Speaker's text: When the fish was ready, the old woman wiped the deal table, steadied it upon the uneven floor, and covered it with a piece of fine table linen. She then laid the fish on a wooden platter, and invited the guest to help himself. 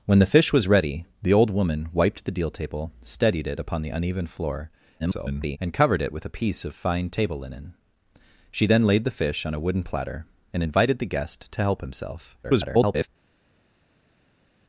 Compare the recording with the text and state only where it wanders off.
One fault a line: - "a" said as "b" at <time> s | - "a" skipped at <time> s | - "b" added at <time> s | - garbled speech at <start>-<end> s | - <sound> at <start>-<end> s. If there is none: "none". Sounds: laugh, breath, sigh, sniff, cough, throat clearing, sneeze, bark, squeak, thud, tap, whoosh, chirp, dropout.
- garbled speech at 5.0-5.6 s
- garbled speech at 12.4-13.1 s